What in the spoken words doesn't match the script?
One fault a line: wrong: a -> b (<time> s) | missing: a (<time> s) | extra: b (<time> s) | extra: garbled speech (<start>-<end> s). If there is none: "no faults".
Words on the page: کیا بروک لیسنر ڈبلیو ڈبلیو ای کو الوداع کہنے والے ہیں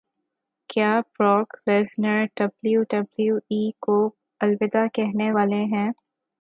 no faults